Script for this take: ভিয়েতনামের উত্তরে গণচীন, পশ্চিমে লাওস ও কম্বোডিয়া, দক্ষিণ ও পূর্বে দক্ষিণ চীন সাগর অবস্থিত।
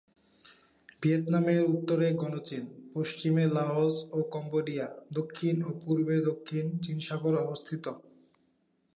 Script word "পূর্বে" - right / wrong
right